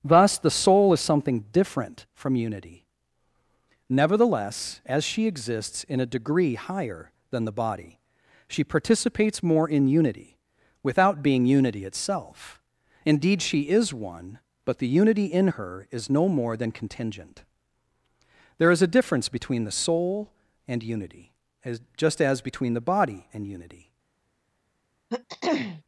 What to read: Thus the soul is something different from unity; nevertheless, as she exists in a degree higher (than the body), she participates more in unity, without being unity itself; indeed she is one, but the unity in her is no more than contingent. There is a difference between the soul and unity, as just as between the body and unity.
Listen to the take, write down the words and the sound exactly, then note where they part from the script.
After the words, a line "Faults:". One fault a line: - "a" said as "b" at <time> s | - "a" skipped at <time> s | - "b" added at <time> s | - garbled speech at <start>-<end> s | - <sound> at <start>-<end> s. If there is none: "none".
Thus the soul is something different from unity; nevertheless, as she exists in a degree higher (than the body), she participates more in unity, without being unity itself; indeed she is one, but the unity in her is no more than contingent. There is a difference between the soul and unity, as just as between the body and unity.
Faults:
- throat clearing at 25.1-25.8 s